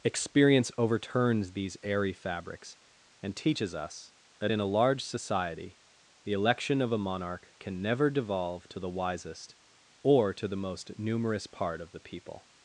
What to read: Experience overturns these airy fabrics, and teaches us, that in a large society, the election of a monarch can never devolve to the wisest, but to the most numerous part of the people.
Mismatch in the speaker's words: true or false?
true